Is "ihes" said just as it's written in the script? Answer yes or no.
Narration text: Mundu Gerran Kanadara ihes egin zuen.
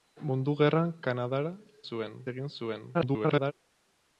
no